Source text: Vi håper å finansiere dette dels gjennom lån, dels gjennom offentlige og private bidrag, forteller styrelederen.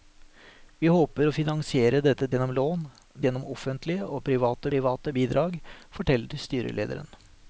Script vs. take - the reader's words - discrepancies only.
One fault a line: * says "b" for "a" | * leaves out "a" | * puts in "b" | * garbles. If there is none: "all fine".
* leaves out "dels"
* leaves out "dels"
* puts in "private"